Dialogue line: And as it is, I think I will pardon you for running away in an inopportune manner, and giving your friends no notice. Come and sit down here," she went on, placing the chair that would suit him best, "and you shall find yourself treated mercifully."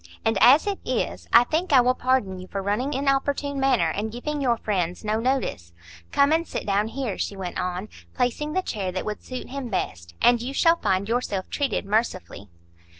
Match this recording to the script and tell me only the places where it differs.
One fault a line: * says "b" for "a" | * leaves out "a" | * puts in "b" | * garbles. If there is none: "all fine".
* leaves out "away in an"